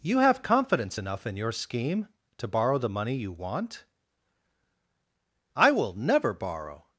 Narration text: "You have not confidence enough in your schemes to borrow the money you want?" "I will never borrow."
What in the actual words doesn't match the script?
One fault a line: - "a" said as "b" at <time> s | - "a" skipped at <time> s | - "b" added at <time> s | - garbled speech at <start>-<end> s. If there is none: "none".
- "not" skipped at 0.4 s
- "schemes" said as "scheme" at 1.5 s